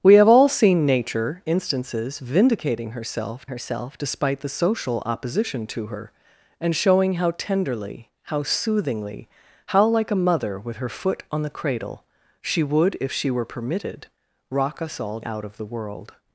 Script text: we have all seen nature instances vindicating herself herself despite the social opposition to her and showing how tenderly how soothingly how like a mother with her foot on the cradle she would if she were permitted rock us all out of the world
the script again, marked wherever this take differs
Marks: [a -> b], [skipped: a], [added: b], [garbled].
we have all seen nature instances vindicating herself herself despite the social opposition to her and showing how tenderly how soothingly how like a mother with her foot on the cradle she would if she were permitted rock us all out of the world